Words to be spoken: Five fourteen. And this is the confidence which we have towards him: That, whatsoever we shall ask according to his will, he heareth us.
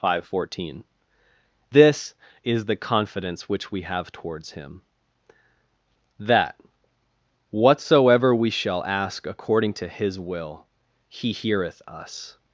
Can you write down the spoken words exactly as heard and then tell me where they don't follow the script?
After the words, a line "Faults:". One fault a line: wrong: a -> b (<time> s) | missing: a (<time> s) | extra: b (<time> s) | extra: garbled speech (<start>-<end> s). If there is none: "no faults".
Five fourteen. This is the confidence which we have towards him: That, whatsoever we shall ask according to his will, he heareth us.
Faults:
missing: And (0.8 s)